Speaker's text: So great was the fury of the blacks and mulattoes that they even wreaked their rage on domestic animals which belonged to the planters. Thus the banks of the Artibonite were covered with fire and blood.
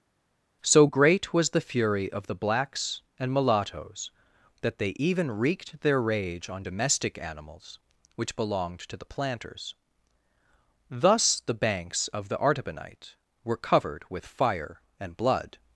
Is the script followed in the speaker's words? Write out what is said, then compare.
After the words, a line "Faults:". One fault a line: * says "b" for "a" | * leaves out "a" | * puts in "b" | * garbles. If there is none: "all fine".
So great was the fury of the blacks and mulattoes that they even wreaked their rage on domestic animals which belonged to the planters. Thus the banks of the Artibonite were covered with fire and blood.
Faults:
all fine